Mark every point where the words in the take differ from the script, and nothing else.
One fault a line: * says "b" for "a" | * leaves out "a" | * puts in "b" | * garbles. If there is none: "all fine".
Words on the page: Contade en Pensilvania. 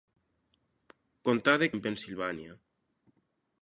all fine